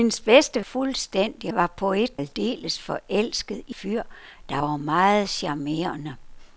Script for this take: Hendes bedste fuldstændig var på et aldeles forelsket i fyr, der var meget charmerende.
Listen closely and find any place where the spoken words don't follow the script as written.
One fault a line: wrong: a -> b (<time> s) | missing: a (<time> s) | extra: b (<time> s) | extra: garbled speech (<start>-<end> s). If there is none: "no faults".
no faults